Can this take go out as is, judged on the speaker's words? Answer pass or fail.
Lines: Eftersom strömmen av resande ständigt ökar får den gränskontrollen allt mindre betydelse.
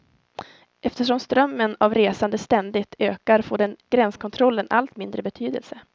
pass